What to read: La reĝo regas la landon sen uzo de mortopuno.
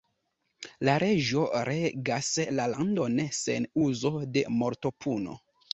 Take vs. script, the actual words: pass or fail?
pass